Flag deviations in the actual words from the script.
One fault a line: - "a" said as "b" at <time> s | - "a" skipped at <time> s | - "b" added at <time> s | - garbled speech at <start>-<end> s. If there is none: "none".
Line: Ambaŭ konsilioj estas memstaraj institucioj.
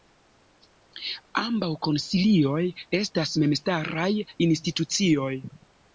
none